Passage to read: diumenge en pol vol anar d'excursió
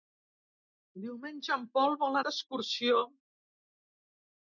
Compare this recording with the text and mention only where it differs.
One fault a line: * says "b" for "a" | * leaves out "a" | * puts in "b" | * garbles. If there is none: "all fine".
* leaves out "anar"